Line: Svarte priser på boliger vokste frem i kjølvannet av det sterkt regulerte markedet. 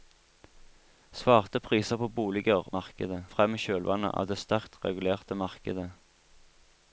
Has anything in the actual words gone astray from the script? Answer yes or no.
yes